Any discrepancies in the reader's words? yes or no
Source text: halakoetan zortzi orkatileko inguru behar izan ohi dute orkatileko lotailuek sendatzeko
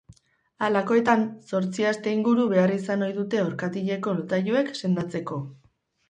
yes